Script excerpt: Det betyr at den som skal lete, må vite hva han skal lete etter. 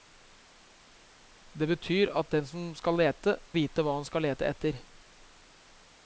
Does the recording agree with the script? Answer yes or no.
no